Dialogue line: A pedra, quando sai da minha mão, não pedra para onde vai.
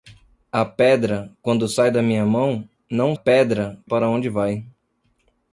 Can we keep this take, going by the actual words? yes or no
yes